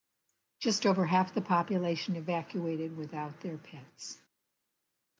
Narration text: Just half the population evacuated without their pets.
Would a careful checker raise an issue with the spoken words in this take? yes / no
yes